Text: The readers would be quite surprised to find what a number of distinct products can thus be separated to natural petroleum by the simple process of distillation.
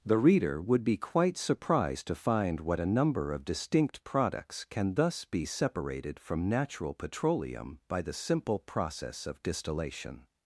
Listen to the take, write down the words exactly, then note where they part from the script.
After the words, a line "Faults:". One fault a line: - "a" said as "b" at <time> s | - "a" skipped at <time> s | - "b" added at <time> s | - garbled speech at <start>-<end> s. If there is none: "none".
The reader would be quite surprised to find what a number of distinct products can thus be separated from natural petroleum by the simple process of distillation.
Faults:
- "readers" said as "reader" at 0.2 s
- "to" said as "from" at 6.2 s